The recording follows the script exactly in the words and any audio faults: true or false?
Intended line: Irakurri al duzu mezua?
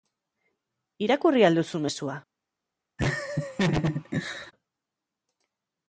false